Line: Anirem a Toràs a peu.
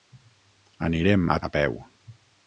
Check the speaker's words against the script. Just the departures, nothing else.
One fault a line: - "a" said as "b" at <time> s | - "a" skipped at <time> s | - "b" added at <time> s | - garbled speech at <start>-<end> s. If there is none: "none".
- "Toràs" skipped at 1.4 s